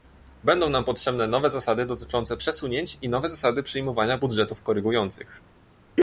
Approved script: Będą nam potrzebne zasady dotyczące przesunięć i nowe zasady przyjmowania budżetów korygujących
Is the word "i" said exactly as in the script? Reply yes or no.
yes